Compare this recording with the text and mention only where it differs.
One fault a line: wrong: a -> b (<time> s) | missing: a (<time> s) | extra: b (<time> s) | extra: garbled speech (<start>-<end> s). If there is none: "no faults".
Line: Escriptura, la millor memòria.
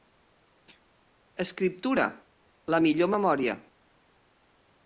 no faults